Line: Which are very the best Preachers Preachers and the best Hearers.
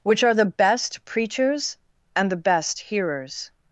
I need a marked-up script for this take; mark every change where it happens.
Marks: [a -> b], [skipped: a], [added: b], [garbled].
Which are [skipped: very] the best Preachers [skipped: Preachers] and the best Hearers.